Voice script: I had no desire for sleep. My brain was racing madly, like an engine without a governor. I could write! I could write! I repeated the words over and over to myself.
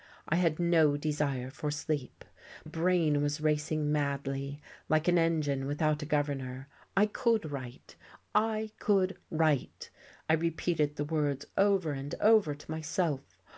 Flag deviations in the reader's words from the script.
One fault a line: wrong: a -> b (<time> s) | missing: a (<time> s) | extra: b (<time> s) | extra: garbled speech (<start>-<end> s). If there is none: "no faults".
missing: My (2.2 s)